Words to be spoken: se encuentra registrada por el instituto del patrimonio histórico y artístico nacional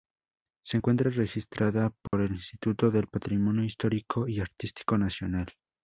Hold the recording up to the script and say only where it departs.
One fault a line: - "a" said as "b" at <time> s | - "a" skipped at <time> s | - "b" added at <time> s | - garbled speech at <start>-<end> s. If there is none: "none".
none